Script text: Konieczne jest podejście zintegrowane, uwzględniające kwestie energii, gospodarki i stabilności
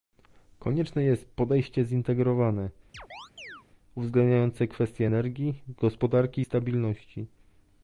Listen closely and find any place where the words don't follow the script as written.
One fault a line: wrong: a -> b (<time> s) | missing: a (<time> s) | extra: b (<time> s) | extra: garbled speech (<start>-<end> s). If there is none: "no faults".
no faults